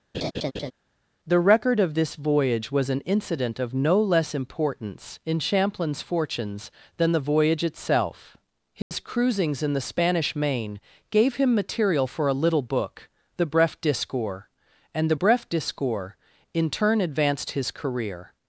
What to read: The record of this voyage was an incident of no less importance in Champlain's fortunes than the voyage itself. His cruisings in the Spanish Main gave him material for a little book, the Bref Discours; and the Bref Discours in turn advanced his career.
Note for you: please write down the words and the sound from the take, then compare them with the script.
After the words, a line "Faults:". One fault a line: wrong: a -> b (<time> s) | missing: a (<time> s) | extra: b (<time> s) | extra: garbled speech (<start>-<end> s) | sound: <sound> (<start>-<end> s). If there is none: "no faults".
The record of this voyage was an incident of no less importance in Champlain's fortunes than the voyage itself. His cruisings in the Spanish Main gave him material for a little book, the Bref Discours; and the Bref Discours in turn advanced his career.
Faults:
sound: laugh (0.1-0.7 s)
sound: dropout (8.8-8.9 s)